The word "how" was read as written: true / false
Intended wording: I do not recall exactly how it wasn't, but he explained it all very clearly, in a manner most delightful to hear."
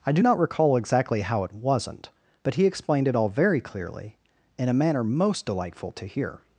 true